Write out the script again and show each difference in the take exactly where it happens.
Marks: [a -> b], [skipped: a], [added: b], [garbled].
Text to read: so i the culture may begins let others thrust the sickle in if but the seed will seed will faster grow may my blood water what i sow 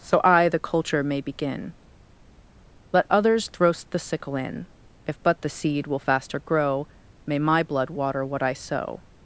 so i the culture may [begins -> begin] let others thrust the sickle in if but the seed will [skipped: seed will] faster grow may my blood water what i sow